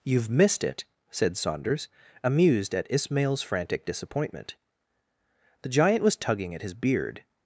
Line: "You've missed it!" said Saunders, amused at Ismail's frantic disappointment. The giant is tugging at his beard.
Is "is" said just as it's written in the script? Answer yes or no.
no